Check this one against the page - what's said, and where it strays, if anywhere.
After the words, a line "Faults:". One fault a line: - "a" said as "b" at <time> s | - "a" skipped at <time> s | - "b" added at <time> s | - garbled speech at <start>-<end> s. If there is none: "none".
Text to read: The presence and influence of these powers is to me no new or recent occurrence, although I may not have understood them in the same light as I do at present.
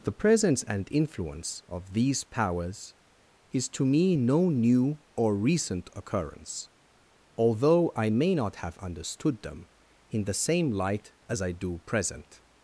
The presence and influence of these powers is to me no new or recent occurrence, although I may not have understood them in the same light as I do present.
Faults:
- "at" skipped at 11.8 s